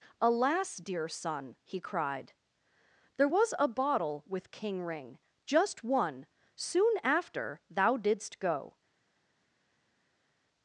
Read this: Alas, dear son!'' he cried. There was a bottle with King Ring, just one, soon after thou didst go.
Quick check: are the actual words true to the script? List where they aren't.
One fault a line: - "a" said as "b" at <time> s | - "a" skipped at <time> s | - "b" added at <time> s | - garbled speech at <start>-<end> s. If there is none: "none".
none